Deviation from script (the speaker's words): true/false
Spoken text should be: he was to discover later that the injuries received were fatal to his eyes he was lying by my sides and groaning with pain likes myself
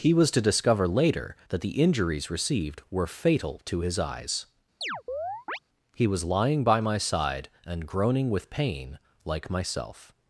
true